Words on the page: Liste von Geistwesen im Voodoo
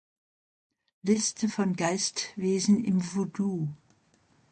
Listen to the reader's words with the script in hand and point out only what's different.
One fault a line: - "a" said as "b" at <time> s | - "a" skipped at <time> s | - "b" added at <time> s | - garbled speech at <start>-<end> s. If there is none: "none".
none